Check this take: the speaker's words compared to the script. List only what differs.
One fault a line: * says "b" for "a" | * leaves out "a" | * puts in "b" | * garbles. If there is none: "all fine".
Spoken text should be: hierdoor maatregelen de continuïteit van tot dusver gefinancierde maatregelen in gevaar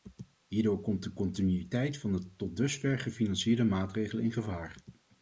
* says "komt" for "maatregelen"
* puts in "de"